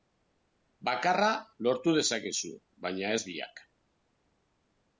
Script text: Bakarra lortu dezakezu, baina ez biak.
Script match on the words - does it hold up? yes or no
yes